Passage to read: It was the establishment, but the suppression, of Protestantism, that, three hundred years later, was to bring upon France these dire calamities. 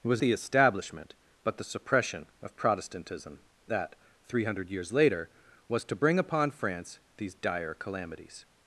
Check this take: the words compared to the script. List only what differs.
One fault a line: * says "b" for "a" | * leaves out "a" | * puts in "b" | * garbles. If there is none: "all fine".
all fine